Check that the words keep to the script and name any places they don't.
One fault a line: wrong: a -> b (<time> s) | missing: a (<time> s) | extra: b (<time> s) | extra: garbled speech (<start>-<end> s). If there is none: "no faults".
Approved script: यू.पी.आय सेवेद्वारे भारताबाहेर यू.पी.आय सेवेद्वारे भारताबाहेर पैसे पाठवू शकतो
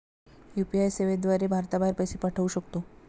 missing: यू.पी.आय सेवेद्वारे भारताबाहेर (1.9 s)